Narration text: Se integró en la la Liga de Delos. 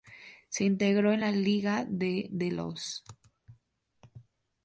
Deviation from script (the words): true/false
true